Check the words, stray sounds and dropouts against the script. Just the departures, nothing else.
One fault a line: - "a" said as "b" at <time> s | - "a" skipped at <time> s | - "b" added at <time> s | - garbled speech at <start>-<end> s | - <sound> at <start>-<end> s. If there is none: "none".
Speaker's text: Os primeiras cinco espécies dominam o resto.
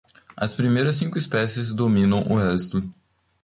- "Os" said as "As" at 0.3 s